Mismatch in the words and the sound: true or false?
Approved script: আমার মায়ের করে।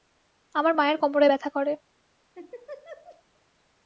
true